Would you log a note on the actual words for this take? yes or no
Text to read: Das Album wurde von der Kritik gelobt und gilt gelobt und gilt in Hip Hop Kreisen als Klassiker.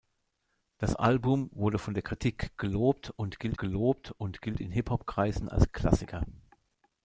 no